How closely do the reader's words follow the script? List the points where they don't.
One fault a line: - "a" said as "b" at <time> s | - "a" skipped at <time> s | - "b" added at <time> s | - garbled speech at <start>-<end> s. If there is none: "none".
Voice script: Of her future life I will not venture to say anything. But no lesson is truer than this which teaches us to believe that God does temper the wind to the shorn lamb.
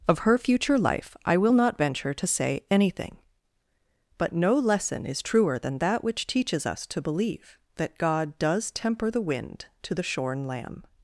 - "this" said as "that" at 5.8 s